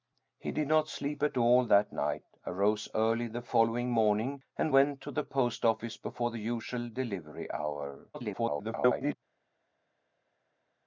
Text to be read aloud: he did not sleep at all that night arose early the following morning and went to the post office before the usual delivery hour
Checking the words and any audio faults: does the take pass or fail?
fail